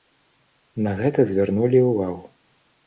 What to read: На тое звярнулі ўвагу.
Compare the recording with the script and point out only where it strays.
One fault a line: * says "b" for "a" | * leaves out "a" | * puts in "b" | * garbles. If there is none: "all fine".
* says "гэта" for "тое"